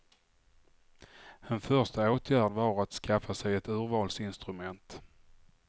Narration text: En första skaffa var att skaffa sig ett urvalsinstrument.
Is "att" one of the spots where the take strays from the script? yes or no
no